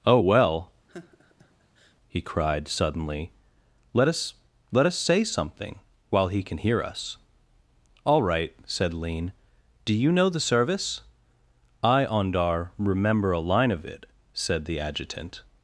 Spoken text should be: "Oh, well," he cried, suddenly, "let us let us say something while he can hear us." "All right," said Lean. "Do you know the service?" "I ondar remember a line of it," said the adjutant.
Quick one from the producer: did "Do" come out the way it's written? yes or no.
yes